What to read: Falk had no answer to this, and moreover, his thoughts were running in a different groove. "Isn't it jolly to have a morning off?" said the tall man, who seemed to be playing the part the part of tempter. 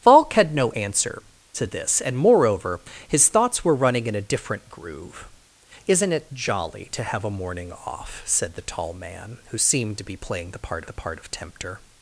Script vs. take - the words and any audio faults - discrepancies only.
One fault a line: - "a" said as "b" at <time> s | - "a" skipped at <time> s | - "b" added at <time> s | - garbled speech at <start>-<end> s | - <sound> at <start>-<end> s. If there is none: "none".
none